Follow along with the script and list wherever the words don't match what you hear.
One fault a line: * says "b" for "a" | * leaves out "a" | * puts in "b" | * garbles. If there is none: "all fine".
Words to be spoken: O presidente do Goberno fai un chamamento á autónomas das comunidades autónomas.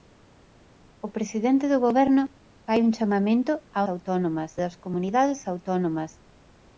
all fine